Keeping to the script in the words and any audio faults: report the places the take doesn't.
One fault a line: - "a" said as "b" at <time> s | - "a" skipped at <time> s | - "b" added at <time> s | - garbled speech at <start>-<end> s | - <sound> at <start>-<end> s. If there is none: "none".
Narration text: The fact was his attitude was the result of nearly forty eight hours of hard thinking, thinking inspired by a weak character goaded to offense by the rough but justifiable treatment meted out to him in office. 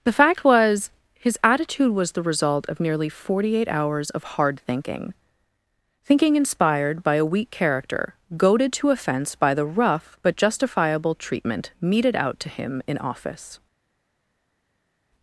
none